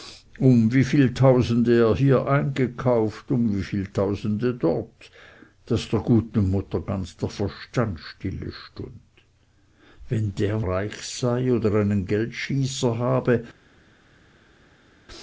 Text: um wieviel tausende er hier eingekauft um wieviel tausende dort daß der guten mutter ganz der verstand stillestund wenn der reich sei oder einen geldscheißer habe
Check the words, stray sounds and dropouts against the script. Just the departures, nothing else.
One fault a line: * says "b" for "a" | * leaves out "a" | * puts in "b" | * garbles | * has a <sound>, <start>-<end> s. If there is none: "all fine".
all fine